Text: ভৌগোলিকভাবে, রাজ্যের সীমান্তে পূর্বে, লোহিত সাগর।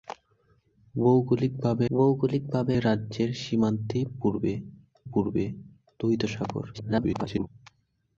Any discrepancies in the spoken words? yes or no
yes